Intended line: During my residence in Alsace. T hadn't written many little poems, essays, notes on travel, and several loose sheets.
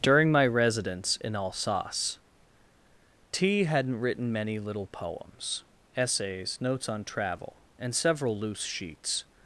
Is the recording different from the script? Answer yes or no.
no